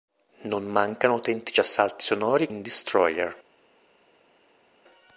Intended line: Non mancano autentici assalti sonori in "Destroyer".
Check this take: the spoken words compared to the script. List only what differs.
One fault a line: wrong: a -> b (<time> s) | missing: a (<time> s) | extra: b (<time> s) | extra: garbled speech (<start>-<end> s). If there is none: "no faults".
no faults